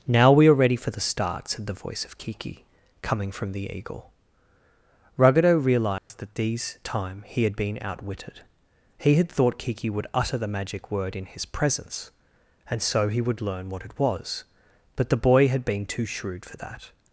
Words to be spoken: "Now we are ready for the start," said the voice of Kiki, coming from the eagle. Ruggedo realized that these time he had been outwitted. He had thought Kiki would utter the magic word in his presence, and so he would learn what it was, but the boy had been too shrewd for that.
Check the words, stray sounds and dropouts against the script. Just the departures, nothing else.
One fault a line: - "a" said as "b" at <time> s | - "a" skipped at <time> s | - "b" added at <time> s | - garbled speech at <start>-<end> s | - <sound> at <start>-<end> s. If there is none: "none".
- dropout at 6.0-6.1 s